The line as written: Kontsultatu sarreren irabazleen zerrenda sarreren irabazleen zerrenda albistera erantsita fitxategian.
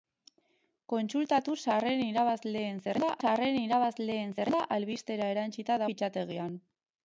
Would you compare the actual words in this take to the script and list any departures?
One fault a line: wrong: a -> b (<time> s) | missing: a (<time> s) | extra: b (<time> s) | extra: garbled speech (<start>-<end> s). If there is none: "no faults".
no faults